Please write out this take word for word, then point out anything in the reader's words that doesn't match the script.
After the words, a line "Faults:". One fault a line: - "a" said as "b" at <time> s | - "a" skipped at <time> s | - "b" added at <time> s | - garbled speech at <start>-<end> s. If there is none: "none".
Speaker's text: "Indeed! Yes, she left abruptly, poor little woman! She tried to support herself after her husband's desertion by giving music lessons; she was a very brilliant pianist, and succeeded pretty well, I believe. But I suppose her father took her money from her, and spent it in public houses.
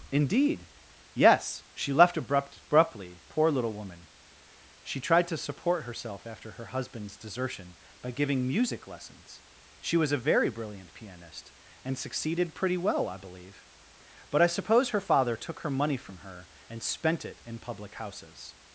"Indeed! Yes, she left abrupt abruptly, poor little woman! She tried to support herself after her husband's desertion by giving music lessons; she was a very brilliant pianist, and succeeded pretty well, I believe. But I suppose her father took her money from her, and spent it in public houses.
Faults:
- "abrupt" added at 2.2 s